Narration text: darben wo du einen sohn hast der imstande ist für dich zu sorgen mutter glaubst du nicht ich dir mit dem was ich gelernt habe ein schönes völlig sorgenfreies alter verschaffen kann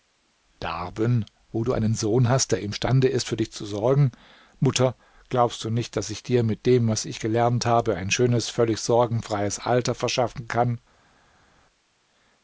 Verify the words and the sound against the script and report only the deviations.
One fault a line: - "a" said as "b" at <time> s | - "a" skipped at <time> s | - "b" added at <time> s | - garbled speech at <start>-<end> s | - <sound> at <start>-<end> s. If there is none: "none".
- "daß" added at 5.9 s